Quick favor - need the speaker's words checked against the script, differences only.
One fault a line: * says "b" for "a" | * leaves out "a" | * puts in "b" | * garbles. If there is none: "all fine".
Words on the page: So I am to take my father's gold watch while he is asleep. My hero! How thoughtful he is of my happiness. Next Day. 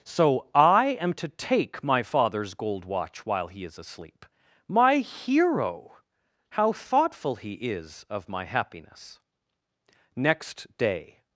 all fine